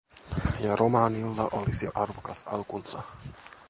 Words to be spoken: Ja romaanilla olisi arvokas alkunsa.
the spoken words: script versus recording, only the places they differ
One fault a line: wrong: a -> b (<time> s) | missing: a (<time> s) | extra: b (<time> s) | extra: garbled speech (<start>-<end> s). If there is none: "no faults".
no faults